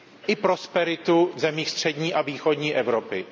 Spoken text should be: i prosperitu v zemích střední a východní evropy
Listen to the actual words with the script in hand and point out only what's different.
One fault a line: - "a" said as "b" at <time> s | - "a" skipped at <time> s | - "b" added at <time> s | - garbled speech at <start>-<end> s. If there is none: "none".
none